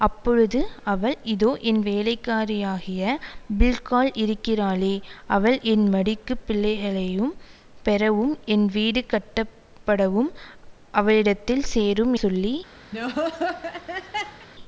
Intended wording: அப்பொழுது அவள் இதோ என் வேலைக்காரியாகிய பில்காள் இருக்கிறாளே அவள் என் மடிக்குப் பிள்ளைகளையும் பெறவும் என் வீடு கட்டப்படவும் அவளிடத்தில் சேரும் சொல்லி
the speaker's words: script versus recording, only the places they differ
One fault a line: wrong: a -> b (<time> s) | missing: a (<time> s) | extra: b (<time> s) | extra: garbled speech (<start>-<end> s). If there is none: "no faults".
no faults